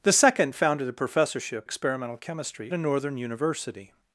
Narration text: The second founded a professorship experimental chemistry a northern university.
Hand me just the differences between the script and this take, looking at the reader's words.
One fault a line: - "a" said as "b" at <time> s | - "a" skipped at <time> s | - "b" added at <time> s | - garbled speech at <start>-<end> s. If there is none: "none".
none